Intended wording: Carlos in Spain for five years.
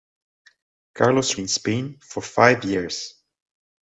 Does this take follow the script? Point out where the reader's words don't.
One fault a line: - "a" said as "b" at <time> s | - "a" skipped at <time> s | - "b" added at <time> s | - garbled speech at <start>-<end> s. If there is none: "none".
none